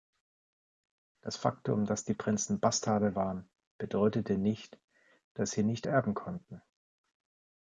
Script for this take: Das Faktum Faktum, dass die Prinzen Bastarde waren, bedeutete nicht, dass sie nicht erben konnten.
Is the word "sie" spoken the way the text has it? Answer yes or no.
yes